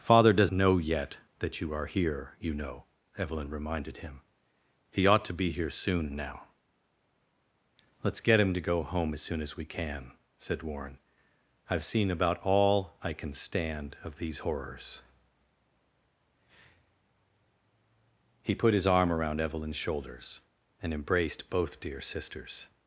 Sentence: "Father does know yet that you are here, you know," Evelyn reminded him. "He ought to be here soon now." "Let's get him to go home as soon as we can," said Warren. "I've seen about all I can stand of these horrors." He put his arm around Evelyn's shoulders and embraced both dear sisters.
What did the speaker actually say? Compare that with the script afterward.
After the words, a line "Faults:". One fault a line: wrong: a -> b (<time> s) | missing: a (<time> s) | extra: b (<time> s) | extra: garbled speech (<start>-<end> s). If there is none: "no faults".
"Father does know yet that you are here, you know," Evelyn reminded him. "He ought to be here soon now." "Let's get him to go home as soon as we can," said Warren. "I've seen about all I can stand of these horrors." He put his arm around Evelyn's shoulders and embraced both dear sisters.
Faults:
no faults